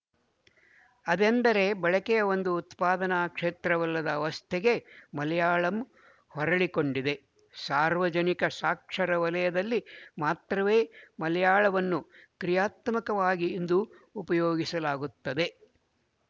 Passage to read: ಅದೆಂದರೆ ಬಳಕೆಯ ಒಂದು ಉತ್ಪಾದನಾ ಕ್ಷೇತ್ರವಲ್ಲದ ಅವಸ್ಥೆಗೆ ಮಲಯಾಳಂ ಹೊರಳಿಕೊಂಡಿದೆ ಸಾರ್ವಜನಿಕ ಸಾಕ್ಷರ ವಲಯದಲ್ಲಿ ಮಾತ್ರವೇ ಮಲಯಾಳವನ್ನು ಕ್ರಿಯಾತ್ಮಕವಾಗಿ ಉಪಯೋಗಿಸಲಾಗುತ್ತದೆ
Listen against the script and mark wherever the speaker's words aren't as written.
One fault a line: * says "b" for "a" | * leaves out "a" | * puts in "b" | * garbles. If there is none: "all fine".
* puts in "ಇಂದು"